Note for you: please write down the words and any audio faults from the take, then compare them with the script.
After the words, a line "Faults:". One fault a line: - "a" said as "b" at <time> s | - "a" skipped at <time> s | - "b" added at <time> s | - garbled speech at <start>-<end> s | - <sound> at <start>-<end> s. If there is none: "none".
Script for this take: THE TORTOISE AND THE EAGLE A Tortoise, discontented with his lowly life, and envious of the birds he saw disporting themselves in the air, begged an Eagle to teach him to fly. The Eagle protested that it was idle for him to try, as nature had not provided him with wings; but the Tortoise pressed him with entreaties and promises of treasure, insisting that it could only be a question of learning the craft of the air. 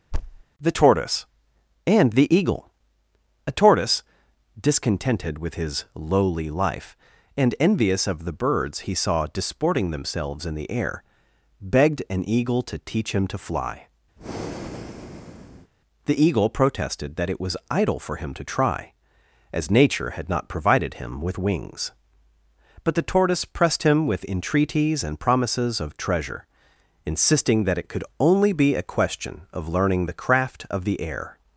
THE TORTOISE AND THE EAGLE A Tortoise, discontented with his lowly life, and envious of the birds he saw disporting themselves in the air, begged an Eagle to teach him to fly. The Eagle protested that it was idle for him to try, as nature had not provided him with wings; but the Tortoise pressed him with entreaties and promises of treasure, insisting that it could only be a question of learning the craft of the air.
Faults:
- thud at 0.1-0.4 s
- breath at 14.2-15.7 s